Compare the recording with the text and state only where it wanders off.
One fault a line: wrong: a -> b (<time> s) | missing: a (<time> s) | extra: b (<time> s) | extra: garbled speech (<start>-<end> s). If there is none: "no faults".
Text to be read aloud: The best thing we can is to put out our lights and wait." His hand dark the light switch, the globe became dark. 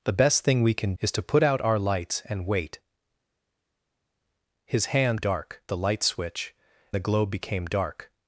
no faults